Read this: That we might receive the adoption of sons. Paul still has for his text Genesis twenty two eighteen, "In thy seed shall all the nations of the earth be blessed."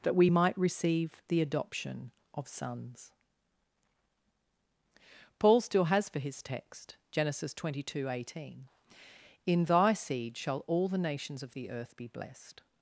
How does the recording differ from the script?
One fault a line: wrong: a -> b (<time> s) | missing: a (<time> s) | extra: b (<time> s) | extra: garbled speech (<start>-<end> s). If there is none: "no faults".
no faults